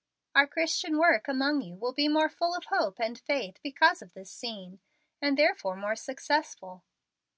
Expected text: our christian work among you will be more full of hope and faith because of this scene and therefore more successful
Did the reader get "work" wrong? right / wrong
right